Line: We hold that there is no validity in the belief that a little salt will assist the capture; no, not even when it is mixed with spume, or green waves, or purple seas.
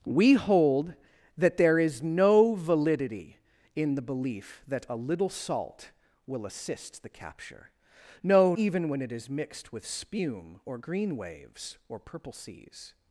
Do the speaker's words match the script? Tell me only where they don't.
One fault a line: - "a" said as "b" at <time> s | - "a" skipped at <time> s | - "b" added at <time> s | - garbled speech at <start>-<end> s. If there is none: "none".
- "not" skipped at 8.6 s